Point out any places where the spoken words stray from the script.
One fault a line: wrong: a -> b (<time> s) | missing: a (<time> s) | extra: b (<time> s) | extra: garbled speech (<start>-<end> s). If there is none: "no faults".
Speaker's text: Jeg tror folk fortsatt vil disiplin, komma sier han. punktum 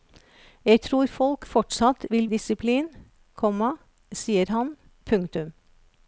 no faults